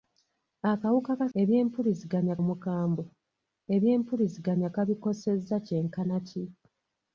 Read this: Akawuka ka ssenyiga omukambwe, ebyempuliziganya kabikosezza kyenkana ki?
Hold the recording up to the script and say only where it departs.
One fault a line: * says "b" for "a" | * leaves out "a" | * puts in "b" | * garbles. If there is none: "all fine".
* says "ebyempuliziganya" for "ssenyiga"